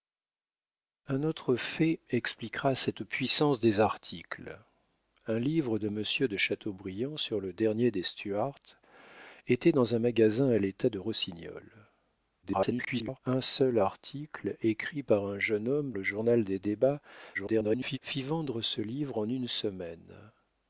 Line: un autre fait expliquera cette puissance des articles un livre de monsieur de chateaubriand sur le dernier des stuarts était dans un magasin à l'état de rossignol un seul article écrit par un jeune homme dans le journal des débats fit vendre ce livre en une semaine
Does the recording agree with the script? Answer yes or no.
no